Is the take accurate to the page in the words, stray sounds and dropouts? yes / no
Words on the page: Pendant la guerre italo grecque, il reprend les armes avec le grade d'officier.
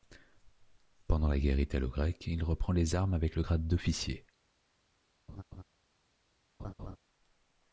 no